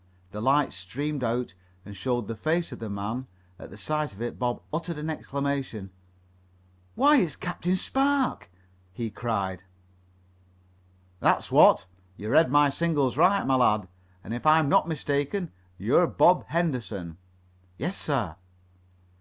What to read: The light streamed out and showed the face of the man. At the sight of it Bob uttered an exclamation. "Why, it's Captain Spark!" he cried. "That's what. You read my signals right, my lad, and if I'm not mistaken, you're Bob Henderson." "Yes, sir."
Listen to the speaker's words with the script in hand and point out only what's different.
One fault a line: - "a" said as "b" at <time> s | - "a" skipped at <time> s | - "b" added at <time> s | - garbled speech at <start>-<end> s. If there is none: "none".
none